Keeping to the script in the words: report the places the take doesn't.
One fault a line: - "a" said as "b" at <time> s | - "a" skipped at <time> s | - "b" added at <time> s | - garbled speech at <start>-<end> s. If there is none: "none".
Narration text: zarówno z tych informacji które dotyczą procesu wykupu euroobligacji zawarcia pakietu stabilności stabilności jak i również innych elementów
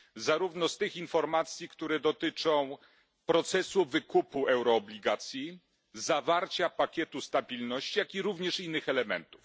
- "stabilności" skipped at 8.0 s